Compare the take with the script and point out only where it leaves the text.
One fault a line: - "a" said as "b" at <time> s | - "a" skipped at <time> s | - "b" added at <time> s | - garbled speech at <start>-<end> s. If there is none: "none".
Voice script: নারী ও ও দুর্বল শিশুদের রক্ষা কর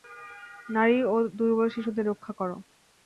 - "ও" skipped at 1.3 s